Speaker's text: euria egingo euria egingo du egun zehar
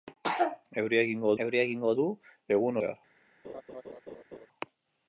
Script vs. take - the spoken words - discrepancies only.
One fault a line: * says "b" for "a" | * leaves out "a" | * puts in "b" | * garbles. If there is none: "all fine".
all fine